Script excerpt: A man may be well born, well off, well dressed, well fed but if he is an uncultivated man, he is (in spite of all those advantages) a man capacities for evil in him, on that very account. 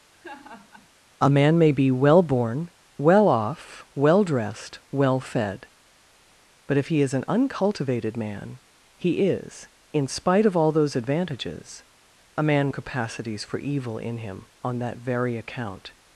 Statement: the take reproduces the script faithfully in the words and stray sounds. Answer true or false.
false